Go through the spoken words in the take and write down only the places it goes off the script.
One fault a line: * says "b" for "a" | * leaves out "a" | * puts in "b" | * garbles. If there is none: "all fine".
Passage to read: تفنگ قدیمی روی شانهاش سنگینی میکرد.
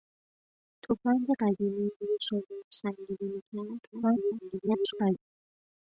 * garbles